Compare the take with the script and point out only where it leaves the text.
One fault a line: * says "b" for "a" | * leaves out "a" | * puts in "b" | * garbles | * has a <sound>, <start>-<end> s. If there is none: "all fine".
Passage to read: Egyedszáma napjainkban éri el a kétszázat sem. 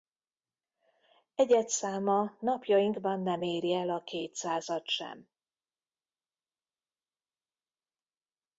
* puts in "nem"